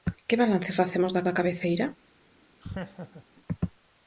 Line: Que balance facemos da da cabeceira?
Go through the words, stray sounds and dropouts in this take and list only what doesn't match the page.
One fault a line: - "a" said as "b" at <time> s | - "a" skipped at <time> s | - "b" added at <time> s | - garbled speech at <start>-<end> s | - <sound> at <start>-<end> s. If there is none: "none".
- laugh at 2.6-3.3 s